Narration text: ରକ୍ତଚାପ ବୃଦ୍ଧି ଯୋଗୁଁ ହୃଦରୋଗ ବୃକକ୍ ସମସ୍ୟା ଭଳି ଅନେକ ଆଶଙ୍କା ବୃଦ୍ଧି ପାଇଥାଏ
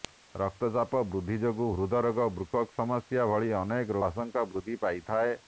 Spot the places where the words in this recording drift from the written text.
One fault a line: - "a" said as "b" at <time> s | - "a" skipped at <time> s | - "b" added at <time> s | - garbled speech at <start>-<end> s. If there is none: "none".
none